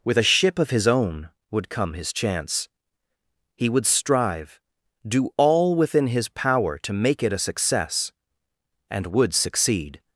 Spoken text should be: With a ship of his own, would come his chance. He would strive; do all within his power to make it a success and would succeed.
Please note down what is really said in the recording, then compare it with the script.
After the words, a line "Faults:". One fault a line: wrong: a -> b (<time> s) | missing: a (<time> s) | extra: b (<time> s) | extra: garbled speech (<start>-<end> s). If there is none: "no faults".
With a ship of his own, would come his chance. He would strive; do all within his power to make it a success and would succeed.
Faults:
no faults